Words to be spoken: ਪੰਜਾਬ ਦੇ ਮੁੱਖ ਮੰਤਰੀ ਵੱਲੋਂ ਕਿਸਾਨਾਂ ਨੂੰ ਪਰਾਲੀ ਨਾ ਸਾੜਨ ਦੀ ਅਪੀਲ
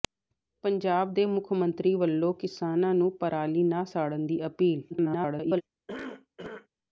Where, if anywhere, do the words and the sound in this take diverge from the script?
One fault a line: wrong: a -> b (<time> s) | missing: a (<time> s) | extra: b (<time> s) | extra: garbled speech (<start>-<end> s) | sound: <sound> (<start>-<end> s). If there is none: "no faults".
extra: garbled speech (4.9-5.6 s)
sound: cough (5.9-6.7 s)